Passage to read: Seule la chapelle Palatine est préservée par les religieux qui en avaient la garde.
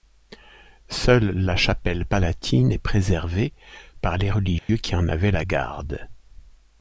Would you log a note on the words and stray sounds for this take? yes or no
yes